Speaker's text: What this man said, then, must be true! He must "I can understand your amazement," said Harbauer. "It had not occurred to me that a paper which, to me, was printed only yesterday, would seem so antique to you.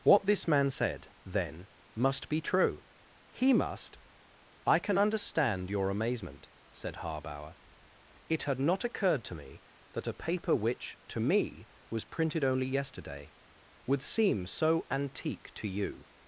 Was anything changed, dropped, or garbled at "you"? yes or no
no